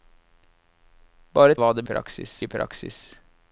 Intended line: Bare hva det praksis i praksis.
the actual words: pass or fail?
pass